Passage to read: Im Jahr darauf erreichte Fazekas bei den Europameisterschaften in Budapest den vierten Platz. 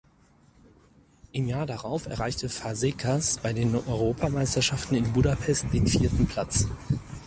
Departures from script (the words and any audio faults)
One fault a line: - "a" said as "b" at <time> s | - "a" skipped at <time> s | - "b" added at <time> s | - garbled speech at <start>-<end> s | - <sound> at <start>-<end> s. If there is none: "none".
none